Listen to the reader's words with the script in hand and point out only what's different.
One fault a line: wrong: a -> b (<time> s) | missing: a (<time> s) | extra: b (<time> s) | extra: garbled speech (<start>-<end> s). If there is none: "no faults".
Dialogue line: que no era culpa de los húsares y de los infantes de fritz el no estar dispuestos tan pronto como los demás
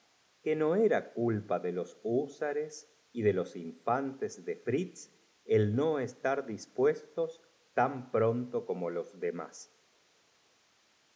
no faults